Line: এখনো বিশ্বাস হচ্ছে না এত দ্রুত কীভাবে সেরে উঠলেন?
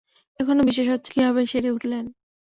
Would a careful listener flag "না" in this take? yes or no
yes